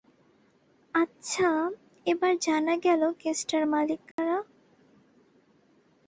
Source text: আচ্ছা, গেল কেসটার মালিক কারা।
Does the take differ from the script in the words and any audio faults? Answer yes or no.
yes